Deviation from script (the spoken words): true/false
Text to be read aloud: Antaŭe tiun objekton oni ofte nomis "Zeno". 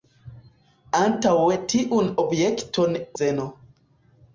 true